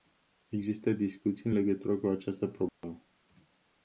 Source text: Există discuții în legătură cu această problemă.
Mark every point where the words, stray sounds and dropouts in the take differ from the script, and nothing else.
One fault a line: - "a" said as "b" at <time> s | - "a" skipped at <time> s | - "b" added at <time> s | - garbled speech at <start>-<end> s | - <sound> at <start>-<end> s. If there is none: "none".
- dropout at 2.7-2.8 s